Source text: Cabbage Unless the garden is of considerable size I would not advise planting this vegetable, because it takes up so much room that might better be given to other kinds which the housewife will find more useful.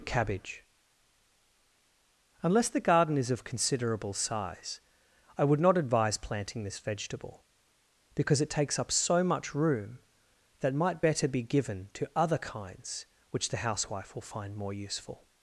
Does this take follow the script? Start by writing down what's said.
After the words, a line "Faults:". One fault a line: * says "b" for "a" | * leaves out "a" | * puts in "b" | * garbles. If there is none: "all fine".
Cabbage Unless the garden is of considerable size I would not advise planting this vegetable, because it takes up so much room that might better be given to other kinds which the housewife will find more useful.
Faults:
all fine